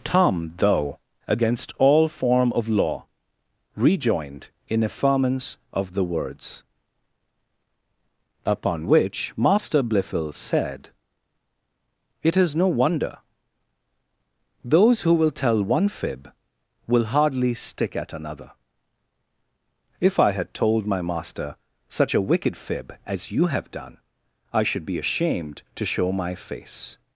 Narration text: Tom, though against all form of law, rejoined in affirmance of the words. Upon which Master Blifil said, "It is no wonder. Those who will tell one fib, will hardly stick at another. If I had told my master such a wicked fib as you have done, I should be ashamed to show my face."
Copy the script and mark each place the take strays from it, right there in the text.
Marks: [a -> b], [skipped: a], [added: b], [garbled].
Tom, though against all form of law, rejoined in affirmance of the words. Upon which Master Blifil said, "It is no wonder. Those who will tell one fib, will hardly stick at another. If I had told my master such a wicked fib as you have done, I should be ashamed to show my face."